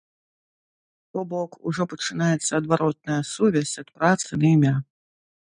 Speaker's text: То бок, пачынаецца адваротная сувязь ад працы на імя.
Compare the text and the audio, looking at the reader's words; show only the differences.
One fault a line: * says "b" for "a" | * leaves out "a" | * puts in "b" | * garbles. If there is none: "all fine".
* puts in "ужо"